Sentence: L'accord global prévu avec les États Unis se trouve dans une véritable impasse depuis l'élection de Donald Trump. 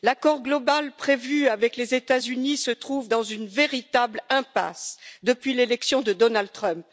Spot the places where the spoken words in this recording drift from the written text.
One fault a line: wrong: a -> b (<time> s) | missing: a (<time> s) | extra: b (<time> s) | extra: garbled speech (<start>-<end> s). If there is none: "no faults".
no faults